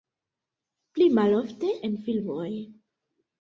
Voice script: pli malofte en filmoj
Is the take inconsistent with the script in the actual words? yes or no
no